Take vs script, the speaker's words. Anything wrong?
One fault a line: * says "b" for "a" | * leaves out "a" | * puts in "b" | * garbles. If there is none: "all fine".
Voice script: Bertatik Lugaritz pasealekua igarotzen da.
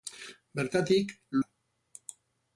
* leaves out "Lugaritz pasealekua igarotzen"